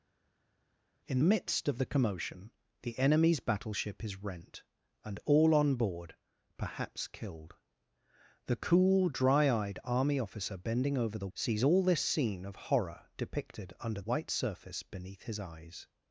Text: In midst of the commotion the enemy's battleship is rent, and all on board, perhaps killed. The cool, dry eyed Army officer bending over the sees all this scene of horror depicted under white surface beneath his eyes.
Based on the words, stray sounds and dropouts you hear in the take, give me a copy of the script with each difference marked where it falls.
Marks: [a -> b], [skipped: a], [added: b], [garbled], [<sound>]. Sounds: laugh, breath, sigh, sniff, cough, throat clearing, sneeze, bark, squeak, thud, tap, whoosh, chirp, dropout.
In midst of the commotion the enemy's battleship is rent, and all on board, perhaps killed. The cool, dry eyed Army officer bending over the sees all this scene of horror depicted under white surface beneath his eyes.